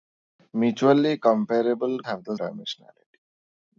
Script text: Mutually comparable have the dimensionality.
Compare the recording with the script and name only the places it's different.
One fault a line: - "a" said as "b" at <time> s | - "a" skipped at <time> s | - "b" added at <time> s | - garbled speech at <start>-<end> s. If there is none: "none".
none